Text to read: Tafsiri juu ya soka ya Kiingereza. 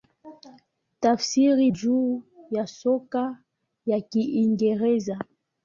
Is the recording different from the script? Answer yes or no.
no